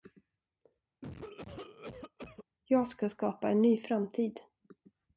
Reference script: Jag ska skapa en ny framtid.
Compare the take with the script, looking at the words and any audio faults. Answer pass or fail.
fail